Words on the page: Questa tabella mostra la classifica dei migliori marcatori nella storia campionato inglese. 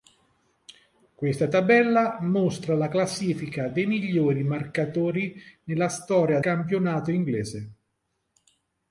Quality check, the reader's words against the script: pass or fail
pass